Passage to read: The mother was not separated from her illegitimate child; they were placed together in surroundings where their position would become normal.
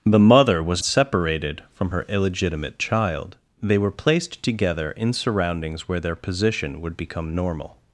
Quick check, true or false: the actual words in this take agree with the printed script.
false